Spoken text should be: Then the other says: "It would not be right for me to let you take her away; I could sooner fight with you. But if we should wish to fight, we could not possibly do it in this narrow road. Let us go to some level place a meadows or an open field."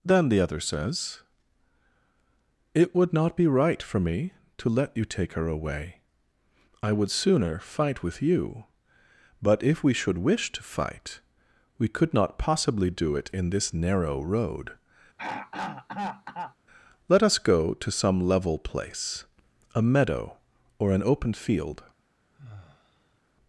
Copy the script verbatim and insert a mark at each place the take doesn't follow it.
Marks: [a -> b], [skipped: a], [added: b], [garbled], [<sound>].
Then the other says: "It would not be right for me to let you take her away; I [could -> would] sooner fight with you. But if we should wish to fight, we could not possibly do it in this narrow road. [throat clearing] Let us go to some level place a [meadows -> meadow] or an open field." [sigh]